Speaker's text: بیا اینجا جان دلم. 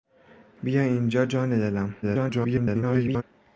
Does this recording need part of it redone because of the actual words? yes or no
yes